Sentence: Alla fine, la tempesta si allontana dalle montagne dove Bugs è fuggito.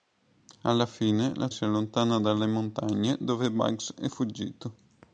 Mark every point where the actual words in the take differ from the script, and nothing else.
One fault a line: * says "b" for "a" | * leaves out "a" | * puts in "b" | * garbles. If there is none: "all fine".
* leaves out "tempesta"